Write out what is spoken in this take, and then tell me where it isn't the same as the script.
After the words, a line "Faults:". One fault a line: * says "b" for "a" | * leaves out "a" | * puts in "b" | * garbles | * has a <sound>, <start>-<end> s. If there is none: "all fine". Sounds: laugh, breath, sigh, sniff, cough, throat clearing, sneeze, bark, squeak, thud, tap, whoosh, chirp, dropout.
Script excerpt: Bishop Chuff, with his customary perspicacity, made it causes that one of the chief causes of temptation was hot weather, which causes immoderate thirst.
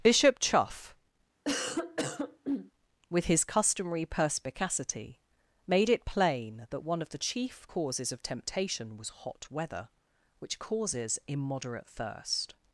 Bishop Chuff, with his customary perspicacity, made it plain that one of the chief causes of temptation was hot weather, which causes immoderate thirst.
Faults:
* has a cough, 1.4-2.7 s
* says "plain" for "causes"